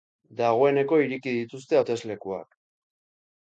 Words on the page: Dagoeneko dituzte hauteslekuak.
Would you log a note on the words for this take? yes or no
yes